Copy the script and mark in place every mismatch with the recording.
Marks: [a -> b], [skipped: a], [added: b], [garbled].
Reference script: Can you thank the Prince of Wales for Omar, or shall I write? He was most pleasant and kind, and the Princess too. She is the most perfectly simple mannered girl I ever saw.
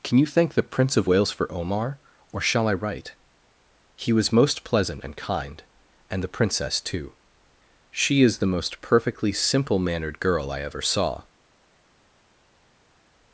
Can you thank the Prince of Wales for Omar, or shall I write? He was most pleasant and kind, and the Princess too. She is the most perfectly simple mannered girl I ever saw.